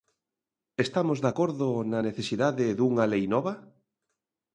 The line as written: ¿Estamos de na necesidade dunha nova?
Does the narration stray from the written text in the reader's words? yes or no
yes